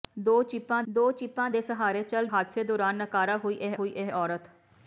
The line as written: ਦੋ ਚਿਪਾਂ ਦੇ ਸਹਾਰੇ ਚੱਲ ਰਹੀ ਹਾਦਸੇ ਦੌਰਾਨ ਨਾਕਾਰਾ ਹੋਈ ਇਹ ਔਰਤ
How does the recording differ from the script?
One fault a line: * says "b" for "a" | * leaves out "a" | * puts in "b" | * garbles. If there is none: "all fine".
* puts in "ਦੋ ਚਿਪਾਂ"
* leaves out "ਰਹੀ"
* puts in "ਹੋਈ ਇਹ"